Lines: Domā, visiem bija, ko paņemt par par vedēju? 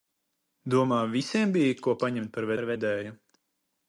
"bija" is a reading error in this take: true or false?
false